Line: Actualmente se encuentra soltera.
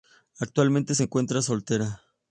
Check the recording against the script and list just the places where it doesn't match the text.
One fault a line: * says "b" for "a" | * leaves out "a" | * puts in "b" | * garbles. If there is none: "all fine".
all fine